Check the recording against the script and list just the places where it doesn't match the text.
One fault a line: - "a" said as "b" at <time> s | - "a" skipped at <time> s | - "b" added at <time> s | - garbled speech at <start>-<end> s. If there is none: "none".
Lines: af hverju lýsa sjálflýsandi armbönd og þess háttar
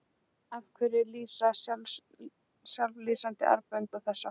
none